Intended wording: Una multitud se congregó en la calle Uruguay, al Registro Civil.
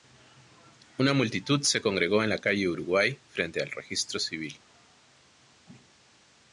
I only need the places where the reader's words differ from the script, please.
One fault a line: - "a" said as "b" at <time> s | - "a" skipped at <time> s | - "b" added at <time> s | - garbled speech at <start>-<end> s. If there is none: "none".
- "frente" added at 3.3 s